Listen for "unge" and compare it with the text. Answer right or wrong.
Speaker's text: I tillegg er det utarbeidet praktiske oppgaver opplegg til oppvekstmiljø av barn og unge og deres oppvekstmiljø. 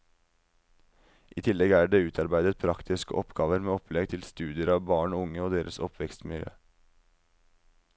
right